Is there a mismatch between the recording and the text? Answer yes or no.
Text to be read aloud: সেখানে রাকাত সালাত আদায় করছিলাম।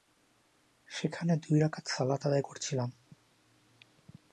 yes